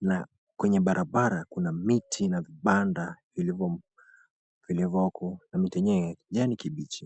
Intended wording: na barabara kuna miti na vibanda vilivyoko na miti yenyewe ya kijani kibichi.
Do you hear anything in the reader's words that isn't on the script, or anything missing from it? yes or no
yes